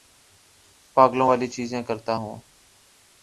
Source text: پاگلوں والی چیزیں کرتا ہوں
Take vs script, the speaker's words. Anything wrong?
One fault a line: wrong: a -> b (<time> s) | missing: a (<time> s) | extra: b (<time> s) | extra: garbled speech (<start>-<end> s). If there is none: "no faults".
no faults